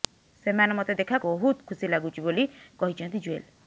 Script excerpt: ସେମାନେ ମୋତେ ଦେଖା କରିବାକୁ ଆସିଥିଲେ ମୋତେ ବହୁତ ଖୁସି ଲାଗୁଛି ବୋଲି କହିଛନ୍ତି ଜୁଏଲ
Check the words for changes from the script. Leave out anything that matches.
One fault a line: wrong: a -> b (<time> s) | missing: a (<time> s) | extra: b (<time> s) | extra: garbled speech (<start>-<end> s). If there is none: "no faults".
missing: କରିବାକୁ ଆସିଥିଲେ ମୋତେ (1.2 s)